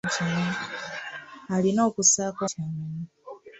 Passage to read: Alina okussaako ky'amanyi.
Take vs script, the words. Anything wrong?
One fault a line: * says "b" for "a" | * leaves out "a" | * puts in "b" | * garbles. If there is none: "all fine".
all fine